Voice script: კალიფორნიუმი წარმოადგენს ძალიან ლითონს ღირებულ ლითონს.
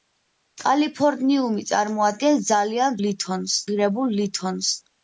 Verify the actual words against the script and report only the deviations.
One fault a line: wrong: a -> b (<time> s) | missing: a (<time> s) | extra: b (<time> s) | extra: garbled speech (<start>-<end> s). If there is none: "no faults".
no faults